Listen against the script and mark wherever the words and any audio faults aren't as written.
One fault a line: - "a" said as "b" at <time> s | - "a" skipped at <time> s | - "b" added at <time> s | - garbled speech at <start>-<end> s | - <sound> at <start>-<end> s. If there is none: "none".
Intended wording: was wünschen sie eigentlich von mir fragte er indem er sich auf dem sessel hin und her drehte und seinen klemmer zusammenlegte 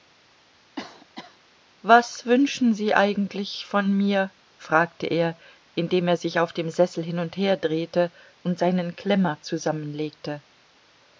- cough at 0.8-1.4 s